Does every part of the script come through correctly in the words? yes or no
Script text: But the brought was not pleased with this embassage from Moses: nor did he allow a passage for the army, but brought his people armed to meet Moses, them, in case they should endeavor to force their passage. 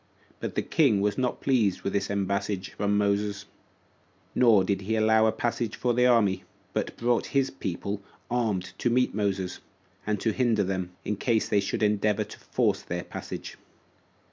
no